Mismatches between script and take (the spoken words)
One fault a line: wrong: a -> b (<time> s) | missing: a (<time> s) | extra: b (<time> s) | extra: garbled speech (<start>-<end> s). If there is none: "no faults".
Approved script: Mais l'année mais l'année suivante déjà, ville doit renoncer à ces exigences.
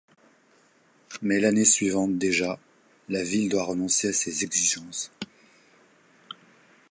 missing: mais l'année (1.6 s)
extra: la (3.1 s)